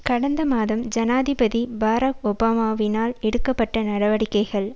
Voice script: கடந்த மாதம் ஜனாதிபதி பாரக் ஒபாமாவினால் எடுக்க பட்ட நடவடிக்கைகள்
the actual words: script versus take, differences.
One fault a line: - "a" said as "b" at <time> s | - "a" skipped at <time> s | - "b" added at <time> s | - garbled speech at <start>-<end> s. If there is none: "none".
none